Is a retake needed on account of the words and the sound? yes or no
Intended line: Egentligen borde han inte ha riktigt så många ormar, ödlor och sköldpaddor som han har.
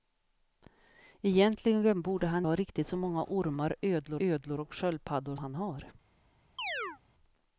yes